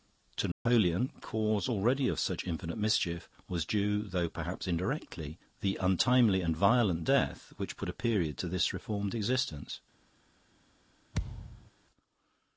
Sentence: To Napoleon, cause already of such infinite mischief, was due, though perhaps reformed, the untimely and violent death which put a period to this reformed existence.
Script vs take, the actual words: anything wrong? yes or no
yes